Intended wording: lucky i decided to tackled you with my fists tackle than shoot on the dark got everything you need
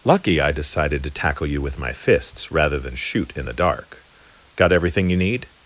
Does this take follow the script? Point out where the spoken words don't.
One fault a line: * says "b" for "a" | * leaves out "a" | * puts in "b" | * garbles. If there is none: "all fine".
* says "tackle" for "tackled"
* says "rather" for "tackle"
* says "in" for "on"